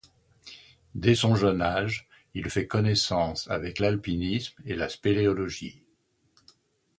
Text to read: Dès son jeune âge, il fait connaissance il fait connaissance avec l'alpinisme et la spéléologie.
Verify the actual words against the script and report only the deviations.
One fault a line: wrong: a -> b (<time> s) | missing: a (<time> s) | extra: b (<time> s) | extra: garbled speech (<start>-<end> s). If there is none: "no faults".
missing: il fait connaissance (3.5 s)